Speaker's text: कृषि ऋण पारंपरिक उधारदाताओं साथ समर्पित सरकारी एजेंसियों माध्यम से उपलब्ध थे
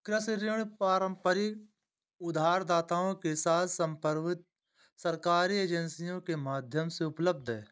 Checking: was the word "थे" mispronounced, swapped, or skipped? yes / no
yes